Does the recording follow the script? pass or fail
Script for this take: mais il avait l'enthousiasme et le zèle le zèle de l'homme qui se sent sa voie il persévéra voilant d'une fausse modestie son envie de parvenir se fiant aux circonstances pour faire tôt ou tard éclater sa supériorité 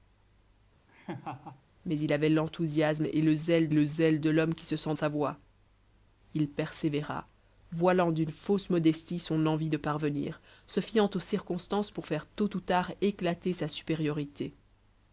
pass